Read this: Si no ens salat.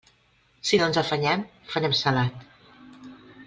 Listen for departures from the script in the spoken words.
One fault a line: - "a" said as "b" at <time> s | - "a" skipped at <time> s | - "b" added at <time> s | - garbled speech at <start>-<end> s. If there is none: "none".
- "afanyem farem" added at 1.0 s